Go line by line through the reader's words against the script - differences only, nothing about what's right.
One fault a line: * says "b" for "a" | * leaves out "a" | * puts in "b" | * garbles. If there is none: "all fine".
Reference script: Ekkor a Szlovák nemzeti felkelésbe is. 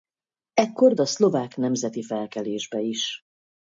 all fine